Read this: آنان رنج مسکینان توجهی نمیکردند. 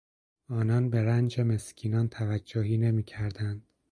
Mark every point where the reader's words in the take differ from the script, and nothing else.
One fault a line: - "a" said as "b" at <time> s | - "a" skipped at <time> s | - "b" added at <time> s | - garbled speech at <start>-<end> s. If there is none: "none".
- "به" added at 0.9 s